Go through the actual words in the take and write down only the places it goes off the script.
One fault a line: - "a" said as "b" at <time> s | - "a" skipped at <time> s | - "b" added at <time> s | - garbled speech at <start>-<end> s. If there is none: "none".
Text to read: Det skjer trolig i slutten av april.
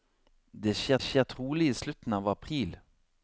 - "skjer" added at 1.0 s